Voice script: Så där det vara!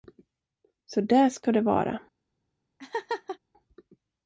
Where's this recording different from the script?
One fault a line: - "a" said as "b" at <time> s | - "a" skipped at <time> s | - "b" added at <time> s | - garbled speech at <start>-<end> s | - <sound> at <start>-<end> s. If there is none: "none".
- "ska" added at 1.3 s
- laugh at 2.8-3.4 s